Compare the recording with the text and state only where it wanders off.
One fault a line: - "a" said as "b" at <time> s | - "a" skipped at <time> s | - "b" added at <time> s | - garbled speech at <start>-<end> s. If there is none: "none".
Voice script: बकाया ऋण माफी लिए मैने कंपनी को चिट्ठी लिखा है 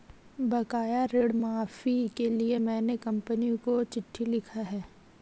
- "के" added at 2.2 s